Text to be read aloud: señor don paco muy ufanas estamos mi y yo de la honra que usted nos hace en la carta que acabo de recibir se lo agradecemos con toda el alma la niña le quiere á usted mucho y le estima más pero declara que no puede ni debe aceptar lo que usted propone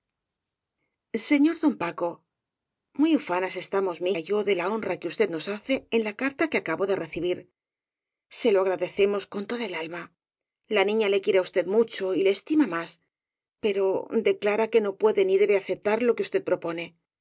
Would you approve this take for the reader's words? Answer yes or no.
yes